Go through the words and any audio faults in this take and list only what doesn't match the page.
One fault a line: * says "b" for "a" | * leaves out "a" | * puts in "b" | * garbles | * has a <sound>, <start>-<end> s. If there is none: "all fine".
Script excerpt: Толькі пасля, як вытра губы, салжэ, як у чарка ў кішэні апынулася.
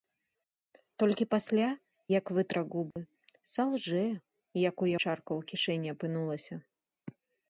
* has a dropout, 2.9-3.0 s